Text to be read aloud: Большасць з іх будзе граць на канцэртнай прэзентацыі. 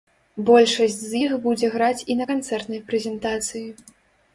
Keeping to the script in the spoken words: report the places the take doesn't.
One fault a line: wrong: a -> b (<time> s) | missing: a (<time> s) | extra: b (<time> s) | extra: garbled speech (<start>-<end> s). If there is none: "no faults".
extra: і (2.1 s)